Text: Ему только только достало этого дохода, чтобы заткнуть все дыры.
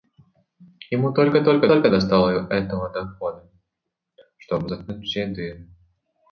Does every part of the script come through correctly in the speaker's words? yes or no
no